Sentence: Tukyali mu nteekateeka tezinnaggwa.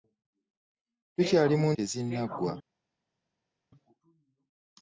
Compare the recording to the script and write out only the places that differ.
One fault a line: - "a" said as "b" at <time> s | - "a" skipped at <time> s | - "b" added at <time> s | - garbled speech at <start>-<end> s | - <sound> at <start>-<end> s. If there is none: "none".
- "nteekateeka" skipped at 1.7 s